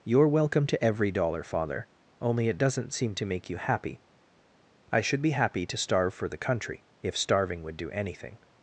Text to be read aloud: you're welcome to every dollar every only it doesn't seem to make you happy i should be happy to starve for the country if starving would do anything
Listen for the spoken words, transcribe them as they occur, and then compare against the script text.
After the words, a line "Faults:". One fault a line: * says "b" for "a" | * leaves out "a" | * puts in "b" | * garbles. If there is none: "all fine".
you're welcome to every dollar father only it doesn't seem to make you happy i should be happy to starve for the country if starving would do anything
Faults:
* says "father" for "every"